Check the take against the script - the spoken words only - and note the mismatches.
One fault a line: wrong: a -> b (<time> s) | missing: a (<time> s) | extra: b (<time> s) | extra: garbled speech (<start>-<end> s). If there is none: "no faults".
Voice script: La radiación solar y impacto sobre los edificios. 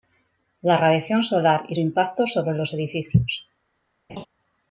no faults